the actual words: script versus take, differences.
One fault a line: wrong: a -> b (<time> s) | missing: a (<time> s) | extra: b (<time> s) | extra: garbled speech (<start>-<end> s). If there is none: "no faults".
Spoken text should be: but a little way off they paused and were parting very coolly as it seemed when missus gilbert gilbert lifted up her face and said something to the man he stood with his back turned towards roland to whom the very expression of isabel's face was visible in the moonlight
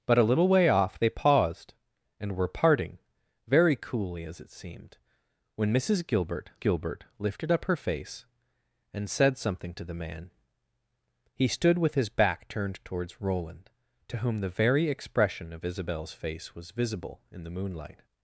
no faults